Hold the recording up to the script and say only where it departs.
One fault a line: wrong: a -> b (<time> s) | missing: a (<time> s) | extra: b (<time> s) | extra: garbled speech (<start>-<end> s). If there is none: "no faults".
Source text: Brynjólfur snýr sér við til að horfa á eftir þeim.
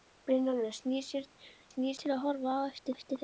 wrong: við -> snýr (1.7 s)
extra: eftir (3.0 s)